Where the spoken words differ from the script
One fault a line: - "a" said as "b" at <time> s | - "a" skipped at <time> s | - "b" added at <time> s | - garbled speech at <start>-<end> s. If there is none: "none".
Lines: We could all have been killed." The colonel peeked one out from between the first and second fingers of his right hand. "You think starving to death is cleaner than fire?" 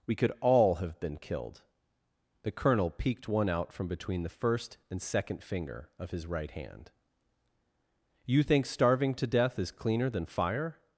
- "fingers" said as "finger" at 5.4 s